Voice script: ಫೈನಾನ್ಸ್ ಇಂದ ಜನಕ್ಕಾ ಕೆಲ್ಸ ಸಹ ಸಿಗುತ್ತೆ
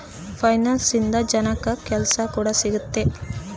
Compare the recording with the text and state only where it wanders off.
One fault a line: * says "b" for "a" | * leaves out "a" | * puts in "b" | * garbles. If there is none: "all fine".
* says "ಕೂಡ" for "ಸಹ"